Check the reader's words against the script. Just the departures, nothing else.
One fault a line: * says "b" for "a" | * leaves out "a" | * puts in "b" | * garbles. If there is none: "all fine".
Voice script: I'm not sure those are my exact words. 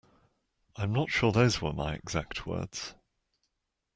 * says "were" for "are"